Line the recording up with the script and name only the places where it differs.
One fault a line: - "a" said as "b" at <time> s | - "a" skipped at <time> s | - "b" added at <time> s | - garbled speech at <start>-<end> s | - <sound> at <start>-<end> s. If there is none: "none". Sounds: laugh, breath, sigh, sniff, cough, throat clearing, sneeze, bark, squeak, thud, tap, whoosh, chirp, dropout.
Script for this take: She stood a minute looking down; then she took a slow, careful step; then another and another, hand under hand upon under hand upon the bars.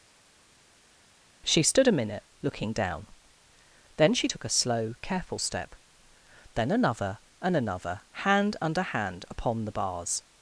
- "under hand upon" skipped at 9.6 s